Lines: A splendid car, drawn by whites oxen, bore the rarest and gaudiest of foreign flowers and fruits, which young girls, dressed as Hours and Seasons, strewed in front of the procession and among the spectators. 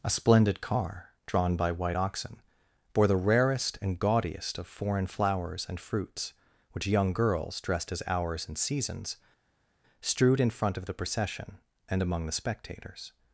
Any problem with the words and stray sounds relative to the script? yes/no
yes